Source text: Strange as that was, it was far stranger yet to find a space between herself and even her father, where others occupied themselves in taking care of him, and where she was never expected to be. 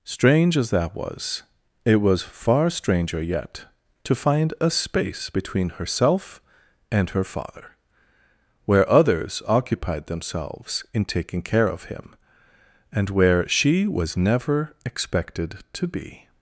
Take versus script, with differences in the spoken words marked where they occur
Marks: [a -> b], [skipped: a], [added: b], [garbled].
Strange as that was, it was far stranger yet to find a space between herself and [skipped: even] her father, where others occupied themselves in taking care of him, and where she was never expected to be.